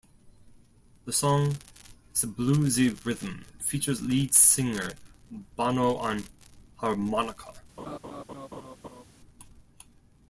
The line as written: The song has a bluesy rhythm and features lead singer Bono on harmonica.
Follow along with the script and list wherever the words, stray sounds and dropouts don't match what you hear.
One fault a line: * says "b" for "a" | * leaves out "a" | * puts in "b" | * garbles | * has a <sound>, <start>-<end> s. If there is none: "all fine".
* leaves out "and"
* has a laugh, 7.8-9.0 s